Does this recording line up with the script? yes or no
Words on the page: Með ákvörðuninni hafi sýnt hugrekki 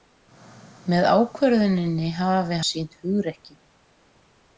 yes